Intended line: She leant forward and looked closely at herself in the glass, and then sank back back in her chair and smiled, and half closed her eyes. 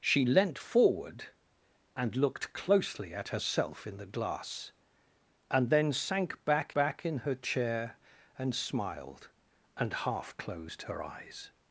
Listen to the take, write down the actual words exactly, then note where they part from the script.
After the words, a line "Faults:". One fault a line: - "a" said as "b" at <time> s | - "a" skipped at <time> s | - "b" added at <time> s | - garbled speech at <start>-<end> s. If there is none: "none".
She leant forward and looked closely at herself in the glass, and then sank back back in her chair and smiled, and half closed her eyes.
Faults:
none